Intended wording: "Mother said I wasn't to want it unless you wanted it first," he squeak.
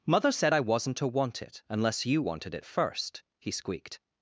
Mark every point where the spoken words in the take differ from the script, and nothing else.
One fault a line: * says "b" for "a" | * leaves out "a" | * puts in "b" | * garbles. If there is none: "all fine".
* says "squeaked" for "squeak"